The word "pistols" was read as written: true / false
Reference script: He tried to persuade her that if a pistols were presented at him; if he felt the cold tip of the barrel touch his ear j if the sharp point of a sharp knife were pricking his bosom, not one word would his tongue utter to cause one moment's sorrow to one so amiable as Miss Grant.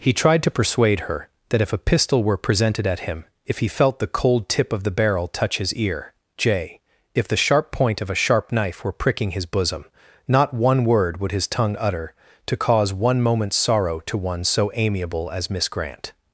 false